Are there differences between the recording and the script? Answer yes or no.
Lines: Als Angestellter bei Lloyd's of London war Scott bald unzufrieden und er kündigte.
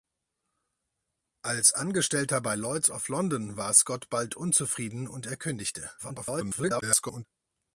yes